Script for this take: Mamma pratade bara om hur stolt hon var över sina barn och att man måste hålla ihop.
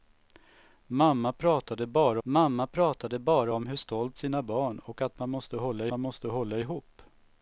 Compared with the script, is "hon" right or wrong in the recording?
wrong